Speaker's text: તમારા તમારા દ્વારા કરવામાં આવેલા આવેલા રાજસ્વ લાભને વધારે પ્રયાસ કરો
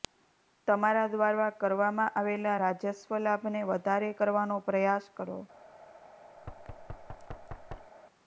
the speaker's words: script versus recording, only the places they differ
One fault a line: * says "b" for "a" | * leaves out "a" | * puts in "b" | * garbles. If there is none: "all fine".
* leaves out "તમારા"
* leaves out "આવેલા"
* puts in "કરવાનો"